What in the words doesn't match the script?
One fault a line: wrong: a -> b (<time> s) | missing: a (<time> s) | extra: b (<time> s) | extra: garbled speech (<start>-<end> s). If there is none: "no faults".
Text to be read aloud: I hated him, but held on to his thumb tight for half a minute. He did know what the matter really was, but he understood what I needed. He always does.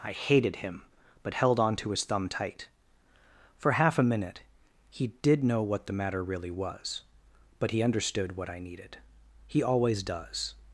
no faults